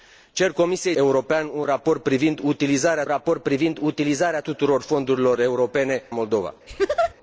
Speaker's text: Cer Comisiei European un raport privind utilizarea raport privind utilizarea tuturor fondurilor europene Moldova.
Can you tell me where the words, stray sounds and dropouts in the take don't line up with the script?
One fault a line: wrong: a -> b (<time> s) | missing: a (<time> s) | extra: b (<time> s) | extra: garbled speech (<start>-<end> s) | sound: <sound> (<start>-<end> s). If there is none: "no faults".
sound: laugh (6.7-7.1 s)